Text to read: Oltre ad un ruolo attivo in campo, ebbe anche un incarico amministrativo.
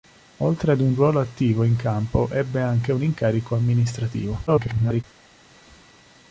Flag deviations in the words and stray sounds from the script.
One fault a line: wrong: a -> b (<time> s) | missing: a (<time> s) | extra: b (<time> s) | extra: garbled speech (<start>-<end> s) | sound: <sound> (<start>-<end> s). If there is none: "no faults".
extra: garbled speech (4.5-5.0 s)